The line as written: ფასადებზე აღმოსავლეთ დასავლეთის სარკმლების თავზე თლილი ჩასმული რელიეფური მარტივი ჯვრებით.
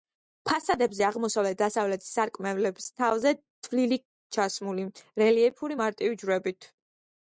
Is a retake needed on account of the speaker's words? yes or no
no